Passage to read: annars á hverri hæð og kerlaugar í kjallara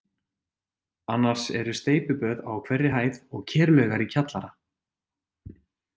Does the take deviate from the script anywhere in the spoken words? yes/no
yes